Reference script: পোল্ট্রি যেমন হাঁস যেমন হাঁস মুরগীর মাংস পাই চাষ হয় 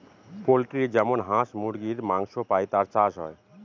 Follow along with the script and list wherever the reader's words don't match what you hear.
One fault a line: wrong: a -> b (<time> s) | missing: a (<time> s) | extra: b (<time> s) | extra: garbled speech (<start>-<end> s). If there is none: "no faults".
missing: যেমন হাঁস (1.5 s)
extra: তার (2.7 s)